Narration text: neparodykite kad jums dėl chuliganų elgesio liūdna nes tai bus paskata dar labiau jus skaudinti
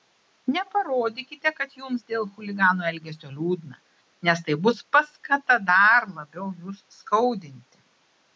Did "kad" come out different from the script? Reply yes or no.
no